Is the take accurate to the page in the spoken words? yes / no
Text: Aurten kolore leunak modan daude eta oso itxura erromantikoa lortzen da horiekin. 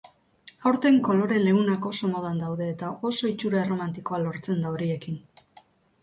no